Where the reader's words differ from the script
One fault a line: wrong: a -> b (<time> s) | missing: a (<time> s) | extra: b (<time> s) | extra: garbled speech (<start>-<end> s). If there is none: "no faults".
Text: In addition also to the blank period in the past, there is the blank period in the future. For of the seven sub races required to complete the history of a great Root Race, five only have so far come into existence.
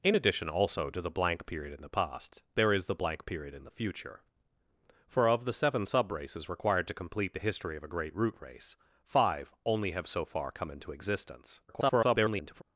extra: garbled speech (11.7-12.6 s)